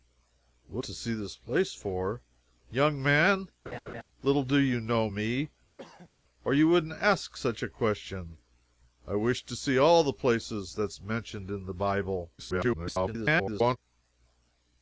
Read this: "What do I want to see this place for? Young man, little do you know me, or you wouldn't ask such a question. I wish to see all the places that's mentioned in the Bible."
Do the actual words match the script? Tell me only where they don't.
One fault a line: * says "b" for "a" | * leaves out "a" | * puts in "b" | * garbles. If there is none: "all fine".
* leaves out "do I want"
* garbles